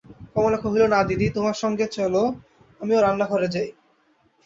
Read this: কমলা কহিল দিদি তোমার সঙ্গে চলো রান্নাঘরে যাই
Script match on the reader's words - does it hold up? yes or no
no